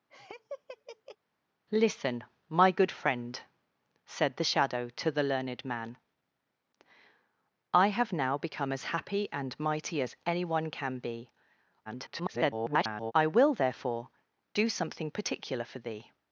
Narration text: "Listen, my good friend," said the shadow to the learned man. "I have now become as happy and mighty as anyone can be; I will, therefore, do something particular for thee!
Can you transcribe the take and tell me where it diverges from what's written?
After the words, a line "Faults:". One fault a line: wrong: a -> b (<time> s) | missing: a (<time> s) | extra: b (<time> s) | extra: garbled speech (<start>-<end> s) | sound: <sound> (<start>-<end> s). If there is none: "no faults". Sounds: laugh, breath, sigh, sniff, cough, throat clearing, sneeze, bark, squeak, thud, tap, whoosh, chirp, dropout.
"Listen, my good friend," said the shadow to the learned man. "I have now become as happy and mighty as anyone can be; [garbled] I will, therefore, do something particular for thee!
Faults:
sound: laugh (0.1-1.2 s)
extra: garbled speech (11.8-13.1 s)